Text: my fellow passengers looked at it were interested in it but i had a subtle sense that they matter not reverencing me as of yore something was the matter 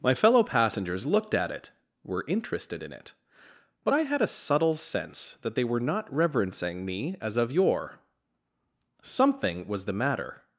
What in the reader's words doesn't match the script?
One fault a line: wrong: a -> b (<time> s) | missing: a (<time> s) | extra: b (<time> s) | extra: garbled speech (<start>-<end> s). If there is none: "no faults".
wrong: matter -> were (5.7 s)